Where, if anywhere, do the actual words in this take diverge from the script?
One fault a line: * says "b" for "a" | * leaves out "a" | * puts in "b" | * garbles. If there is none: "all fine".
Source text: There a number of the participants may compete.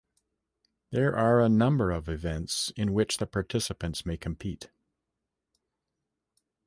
* puts in "are"
* puts in "events in which"